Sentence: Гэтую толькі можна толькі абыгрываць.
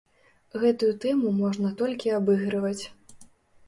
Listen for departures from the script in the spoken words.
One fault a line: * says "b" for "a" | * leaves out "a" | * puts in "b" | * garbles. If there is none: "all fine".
* says "тэму" for "толькі"